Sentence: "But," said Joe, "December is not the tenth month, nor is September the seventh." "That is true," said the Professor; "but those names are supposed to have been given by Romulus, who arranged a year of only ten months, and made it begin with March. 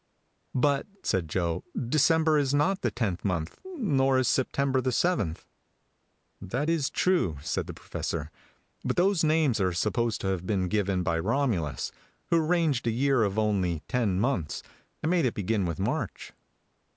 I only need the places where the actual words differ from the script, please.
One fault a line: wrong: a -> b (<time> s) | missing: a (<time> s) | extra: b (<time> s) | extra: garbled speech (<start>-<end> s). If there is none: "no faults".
no faults